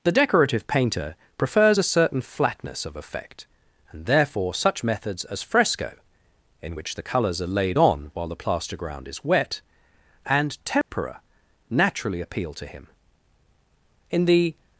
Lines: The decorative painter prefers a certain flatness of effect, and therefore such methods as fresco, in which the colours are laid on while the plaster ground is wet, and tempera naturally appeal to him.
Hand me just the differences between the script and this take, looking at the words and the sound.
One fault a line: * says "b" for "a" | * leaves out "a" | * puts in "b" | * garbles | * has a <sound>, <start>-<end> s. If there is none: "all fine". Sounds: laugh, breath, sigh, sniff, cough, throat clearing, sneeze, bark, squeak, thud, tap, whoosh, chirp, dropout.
* has a dropout, 10.8-10.9 s
* puts in "In the"